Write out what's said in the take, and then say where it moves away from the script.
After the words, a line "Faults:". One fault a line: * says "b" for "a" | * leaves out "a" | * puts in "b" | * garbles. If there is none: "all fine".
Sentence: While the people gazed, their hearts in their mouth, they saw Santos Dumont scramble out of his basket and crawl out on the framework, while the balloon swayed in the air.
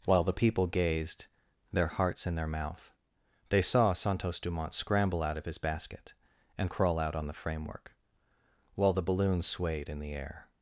While the people gazed, their hearts in their mouth, they saw Santos Dumont scramble out of his basket and crawl out on the framework, while the balloon swayed in the air.
Faults:
all fine